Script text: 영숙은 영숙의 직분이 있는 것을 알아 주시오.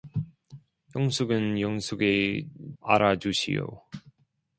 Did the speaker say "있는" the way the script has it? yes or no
no